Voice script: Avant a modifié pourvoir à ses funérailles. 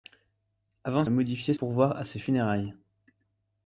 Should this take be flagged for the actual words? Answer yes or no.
no